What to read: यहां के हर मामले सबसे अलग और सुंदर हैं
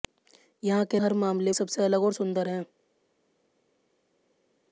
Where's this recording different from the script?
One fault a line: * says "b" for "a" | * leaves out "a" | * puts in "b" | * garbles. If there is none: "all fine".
all fine